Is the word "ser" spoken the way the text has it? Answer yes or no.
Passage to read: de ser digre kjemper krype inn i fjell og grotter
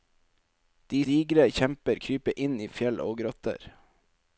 no